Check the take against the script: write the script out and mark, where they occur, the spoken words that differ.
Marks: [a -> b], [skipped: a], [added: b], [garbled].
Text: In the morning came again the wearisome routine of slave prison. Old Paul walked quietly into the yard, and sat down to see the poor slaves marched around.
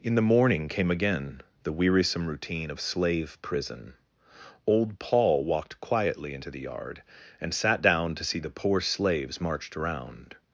In the morning came again the wearisome routine of slave prison. Old Paul walked quietly into the yard, and sat down to see the poor slaves marched around.